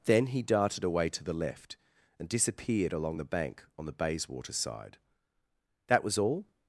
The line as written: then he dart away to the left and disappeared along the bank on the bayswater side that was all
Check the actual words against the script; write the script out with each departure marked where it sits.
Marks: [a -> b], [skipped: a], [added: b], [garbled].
then he [dart -> darted] away to the left and disappeared along the bank on the bayswater side that was all